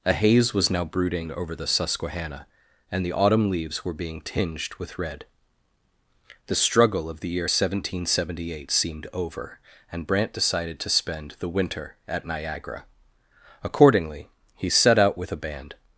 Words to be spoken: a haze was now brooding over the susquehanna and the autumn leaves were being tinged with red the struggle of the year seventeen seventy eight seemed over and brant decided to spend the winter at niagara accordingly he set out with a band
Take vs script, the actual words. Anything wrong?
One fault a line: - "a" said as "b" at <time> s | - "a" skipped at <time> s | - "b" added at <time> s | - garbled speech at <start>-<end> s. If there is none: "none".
none